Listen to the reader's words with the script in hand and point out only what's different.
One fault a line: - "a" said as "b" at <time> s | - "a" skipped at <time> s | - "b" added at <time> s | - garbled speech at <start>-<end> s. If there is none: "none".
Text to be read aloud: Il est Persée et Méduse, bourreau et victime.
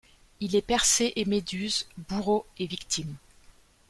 none